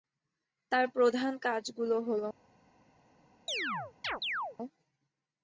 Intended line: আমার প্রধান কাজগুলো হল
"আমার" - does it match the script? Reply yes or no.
no